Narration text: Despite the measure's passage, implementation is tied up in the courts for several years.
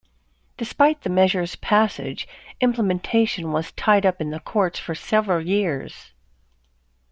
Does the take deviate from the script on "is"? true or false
true